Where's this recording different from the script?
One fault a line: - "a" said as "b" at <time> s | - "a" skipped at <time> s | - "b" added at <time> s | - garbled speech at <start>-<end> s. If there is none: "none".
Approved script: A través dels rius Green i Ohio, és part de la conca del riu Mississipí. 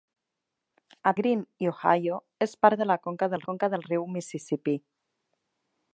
- "través dels rius" skipped at 1.1 s
- "conca del" added at 3.5 s